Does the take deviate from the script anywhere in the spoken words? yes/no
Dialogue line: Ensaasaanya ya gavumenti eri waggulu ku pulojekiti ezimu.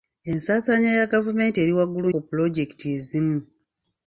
no